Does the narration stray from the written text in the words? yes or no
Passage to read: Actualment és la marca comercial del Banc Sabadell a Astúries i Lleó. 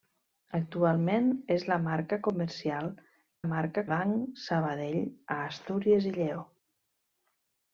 yes